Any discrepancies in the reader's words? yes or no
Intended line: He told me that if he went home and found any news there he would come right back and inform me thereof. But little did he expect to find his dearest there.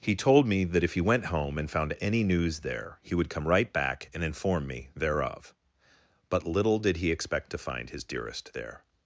no